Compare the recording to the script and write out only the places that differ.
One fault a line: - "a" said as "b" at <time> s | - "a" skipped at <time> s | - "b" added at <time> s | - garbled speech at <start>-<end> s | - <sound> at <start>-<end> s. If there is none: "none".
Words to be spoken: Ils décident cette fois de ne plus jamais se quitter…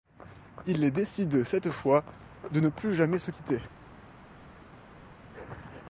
none